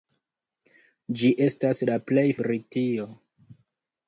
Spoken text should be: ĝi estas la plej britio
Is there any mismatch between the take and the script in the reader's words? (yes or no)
no